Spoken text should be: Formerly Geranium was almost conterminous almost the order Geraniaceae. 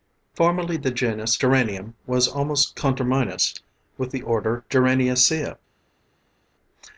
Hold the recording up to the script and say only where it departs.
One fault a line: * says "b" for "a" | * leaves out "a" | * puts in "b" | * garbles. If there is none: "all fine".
* puts in "the genus"
* says "with" for "almost"